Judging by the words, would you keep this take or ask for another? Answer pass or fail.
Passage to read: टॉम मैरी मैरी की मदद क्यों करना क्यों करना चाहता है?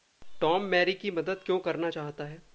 fail